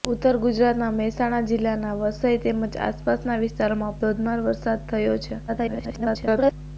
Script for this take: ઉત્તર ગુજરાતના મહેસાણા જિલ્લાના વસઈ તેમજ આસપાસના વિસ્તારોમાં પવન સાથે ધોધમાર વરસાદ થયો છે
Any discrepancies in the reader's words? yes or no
yes